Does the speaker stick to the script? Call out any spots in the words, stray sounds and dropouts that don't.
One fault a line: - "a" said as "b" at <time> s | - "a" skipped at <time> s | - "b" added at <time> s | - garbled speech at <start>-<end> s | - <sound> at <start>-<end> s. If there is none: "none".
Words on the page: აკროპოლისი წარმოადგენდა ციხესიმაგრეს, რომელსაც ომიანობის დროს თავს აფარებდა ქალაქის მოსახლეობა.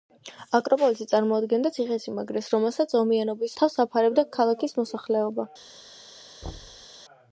- "დროს" skipped at 3.6 s
- thud at 6.4-6.9 s